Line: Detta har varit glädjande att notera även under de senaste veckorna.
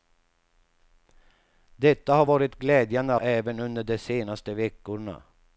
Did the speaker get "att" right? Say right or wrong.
wrong